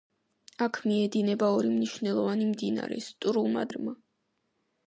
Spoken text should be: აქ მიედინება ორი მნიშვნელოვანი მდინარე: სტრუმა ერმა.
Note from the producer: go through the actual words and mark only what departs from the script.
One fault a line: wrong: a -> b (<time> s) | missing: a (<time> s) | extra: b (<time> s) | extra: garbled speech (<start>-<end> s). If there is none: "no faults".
no faults